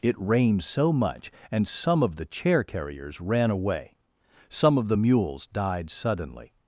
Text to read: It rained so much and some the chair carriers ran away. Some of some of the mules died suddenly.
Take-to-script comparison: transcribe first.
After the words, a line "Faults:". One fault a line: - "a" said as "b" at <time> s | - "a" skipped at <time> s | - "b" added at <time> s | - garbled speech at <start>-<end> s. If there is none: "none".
It rained so much and some of the chair carriers ran away. Some of the mules died suddenly.
Faults:
- "of" added at 2.0 s
- "some of" skipped at 4.9 s